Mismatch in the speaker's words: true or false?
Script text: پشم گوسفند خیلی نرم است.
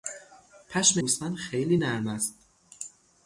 false